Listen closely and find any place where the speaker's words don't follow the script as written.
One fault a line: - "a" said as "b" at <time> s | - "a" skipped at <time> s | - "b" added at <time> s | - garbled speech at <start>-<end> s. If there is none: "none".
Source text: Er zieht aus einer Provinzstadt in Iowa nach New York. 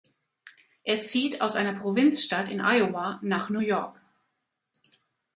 none